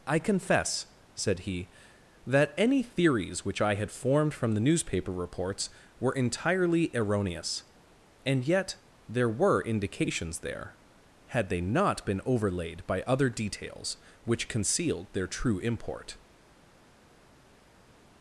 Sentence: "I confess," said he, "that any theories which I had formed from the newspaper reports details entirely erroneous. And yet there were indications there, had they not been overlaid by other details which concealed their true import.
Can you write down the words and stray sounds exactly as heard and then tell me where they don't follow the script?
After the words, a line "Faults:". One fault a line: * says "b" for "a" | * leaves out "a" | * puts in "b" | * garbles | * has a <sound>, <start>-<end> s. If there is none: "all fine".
"I confess," said he, "that any theories which I had formed from the newspaper reports were entirely erroneous. And yet there were indications there, had they not been overlaid by other details which concealed their true import.
Faults:
* says "were" for "details"